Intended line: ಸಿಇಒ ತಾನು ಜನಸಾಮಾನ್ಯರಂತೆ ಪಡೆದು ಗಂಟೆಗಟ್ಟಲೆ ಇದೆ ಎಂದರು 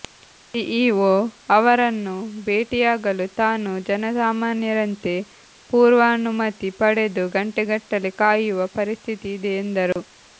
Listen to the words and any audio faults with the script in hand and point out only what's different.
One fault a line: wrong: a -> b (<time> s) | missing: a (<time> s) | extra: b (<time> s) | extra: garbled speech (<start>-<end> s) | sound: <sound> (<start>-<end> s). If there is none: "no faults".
extra: ಅವರನ್ನು ಭೇಟಿಯಾಗಲು (1.6 s)
extra: ಪೂರ್ವಾನುಮತಿ (5.7 s)
extra: ಕಾಯುವ ಪರಿಸ್ಥಿತಿ (8.2 s)
sound: dropout (9.9-10.0 s)